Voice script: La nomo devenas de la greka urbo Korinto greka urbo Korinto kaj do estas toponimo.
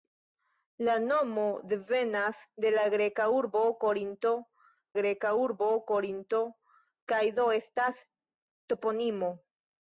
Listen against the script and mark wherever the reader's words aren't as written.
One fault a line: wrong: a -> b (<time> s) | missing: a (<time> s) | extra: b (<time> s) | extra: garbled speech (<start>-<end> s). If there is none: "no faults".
no faults